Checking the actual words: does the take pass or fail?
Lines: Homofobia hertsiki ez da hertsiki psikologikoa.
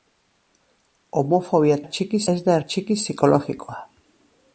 pass